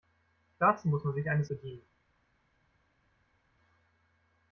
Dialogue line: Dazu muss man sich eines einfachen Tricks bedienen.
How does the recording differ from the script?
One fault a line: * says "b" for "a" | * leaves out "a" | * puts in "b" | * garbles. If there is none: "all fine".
* leaves out "einfachen Tricks"